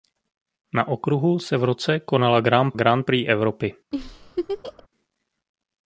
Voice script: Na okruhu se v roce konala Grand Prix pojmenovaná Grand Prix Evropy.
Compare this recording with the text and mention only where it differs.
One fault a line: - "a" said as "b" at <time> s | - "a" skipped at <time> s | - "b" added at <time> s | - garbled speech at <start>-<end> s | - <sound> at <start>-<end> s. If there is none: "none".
- "Prix pojmenovaná" skipped at 2.7 s
- laugh at 3.9-4.9 s